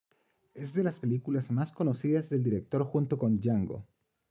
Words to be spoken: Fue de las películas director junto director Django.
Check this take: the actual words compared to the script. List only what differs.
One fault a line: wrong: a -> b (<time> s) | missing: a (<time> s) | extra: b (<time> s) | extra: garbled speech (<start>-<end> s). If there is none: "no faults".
wrong: Fue -> Es (0.6 s)
extra: más conocidas del (1.5 s)
wrong: director -> con (3.2 s)